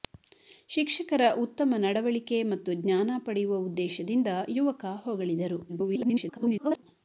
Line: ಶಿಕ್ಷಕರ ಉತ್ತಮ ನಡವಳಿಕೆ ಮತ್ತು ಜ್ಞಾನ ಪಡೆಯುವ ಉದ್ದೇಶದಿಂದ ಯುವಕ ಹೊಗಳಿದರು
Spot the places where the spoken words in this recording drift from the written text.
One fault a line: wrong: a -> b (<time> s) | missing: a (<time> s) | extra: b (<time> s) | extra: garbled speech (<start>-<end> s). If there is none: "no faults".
extra: garbled speech (5.7-6.8 s)